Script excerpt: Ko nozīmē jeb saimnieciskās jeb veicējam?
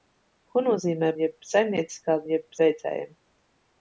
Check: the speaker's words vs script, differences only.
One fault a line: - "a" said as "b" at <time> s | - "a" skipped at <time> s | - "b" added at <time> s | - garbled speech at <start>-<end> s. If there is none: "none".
none